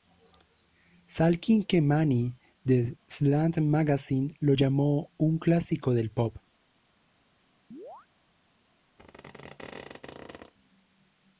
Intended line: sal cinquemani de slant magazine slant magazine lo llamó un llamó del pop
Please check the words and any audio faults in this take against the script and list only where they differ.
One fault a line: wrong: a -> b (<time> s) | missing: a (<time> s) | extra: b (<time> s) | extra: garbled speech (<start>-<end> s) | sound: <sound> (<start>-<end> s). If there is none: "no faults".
missing: slant magazine (4.3 s)
wrong: llamó -> clásico (5.4 s)
sound: chirp (7.7-8.1 s)
sound: squeak (9.0-10.5 s)